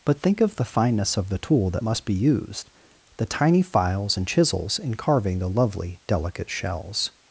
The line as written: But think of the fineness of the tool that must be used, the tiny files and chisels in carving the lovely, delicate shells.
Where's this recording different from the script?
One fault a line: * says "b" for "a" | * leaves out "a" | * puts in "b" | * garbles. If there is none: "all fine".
all fine